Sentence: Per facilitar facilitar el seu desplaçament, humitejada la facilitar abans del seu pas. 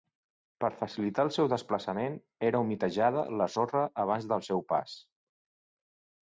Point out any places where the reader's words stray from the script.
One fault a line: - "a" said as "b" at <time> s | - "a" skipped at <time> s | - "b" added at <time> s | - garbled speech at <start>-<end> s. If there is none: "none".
- "facilitar" skipped at 1.2 s
- "era" added at 2.5 s
- "facilitar" said as "sorra" at 3.5 s